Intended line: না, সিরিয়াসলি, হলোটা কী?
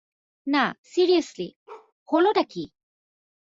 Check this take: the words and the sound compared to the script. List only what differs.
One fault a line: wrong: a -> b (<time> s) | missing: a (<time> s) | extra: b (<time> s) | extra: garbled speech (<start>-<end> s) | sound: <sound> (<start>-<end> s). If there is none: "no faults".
sound: bark (1.7-1.9 s)